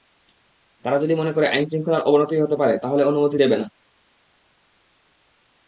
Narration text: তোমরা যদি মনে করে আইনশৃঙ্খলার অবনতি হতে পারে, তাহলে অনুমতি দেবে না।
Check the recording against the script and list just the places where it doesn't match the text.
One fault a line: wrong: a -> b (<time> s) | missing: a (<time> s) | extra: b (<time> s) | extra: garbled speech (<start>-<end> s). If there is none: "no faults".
wrong: তোমরা -> তারা (0.8 s)